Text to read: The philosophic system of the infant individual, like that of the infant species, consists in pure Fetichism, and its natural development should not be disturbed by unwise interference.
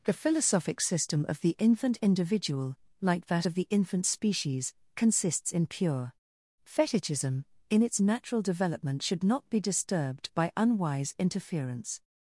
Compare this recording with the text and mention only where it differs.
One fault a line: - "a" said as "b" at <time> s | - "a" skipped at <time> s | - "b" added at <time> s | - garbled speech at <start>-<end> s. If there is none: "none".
- "and" said as "in" at 7.7 s